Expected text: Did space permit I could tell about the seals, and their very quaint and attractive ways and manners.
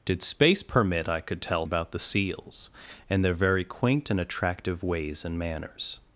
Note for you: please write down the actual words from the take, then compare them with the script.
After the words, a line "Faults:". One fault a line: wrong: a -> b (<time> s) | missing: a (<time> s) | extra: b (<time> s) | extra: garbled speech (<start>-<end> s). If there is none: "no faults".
Did space permit I could tell about the seals, and their very quaint and attractive ways and manners.
Faults:
no faults